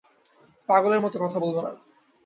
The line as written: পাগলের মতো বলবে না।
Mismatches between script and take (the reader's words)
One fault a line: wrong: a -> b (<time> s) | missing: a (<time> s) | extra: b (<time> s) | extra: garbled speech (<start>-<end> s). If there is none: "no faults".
extra: কথা (1.2 s)